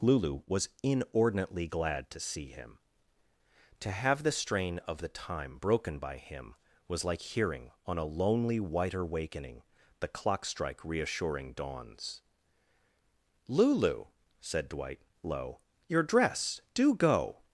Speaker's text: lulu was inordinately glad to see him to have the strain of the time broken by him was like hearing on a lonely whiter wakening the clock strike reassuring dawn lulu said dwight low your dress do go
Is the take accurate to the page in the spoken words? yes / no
no